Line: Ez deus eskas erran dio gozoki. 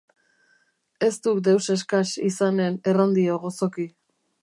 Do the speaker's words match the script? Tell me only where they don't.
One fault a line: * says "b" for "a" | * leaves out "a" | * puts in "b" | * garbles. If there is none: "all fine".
* puts in "duk"
* puts in "izanen"